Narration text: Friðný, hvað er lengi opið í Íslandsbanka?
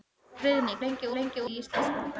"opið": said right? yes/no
no